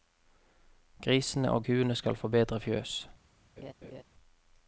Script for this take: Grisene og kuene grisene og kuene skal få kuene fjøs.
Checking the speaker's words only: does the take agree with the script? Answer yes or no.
no